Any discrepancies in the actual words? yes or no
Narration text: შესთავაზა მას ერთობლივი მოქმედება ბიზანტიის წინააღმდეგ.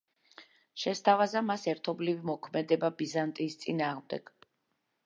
no